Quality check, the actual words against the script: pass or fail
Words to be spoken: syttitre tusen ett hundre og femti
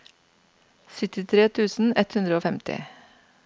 pass